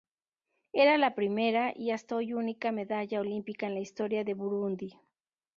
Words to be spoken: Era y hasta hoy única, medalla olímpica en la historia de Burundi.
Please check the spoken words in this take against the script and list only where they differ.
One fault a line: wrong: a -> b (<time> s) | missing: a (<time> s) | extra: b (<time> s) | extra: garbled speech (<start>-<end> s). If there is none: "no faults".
extra: la primera (1.0 s)